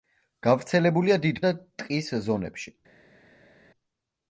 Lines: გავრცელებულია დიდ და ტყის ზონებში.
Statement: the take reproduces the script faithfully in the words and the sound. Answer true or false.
true